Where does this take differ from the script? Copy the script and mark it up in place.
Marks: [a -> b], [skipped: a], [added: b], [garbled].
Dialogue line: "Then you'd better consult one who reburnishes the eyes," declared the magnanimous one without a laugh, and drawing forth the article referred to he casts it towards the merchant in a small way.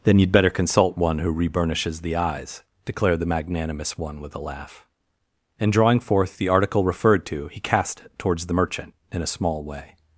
"Then you'd better consult one who reburnishes the eyes," declared the magnanimous one [without -> with] a laugh, and drawing forth the article referred to he [casts -> cast] it towards the merchant in a small way.